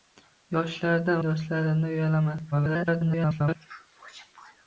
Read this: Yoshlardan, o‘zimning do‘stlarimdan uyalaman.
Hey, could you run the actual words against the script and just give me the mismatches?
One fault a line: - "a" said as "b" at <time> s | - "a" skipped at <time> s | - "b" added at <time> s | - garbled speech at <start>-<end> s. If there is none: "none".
- "o‘zimning" skipped at 1.2 s
- garbled speech at 2.5-3.6 s